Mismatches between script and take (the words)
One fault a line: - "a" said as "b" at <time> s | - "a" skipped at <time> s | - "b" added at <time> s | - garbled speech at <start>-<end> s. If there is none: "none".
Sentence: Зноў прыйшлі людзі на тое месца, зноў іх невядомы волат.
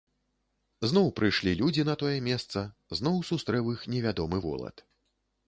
- "сустрэў" added at 3.3 s